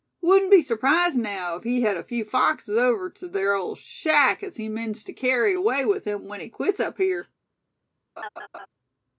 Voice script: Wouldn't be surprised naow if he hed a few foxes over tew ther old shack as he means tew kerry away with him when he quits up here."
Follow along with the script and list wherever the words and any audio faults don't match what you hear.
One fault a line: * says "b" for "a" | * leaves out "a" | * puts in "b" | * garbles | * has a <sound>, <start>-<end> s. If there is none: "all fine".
* has a laugh, 8.2-8.7 s